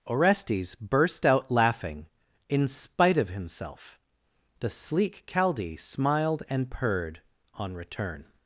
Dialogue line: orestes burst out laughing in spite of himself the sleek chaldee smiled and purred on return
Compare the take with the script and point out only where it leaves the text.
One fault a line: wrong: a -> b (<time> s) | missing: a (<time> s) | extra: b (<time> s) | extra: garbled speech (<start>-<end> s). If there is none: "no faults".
no faults